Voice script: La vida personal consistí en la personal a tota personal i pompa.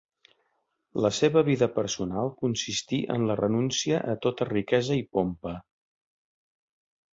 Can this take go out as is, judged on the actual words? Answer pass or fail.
fail